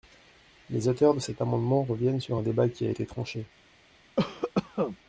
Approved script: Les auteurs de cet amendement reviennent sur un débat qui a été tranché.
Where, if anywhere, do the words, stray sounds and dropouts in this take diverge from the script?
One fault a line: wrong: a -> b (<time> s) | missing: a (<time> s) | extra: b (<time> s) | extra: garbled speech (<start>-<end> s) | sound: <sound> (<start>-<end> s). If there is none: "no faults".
sound: cough (4.2-5.0 s)